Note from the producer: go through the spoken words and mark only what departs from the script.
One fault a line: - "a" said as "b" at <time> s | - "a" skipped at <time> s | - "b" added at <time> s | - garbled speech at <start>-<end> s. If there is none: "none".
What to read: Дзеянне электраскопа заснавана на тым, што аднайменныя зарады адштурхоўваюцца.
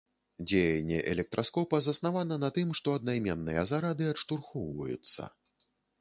none